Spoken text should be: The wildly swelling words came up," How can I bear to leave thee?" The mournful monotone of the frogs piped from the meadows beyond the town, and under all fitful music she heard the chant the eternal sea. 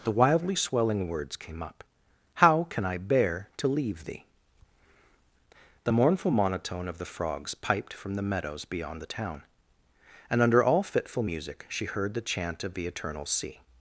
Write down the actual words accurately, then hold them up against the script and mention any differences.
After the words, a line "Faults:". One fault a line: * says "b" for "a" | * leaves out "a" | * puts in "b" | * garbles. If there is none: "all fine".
The wildly swelling words came up," How can I bear to leave thee?" The mournful monotone of the frogs piped from the meadows beyond the town, and under all fitful music she heard the chant of the eternal sea.
Faults:
* puts in "of"